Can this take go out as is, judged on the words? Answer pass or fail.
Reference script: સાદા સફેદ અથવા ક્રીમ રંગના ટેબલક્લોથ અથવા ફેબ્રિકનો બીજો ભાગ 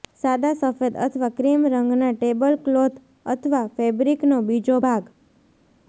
pass